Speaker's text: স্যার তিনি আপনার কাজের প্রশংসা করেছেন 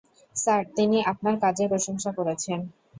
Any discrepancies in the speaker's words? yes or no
no